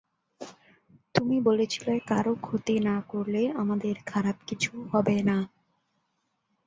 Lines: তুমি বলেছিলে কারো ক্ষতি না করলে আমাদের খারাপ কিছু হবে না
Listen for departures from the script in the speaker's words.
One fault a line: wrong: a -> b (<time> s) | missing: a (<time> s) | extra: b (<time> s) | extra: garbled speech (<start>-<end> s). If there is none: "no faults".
no faults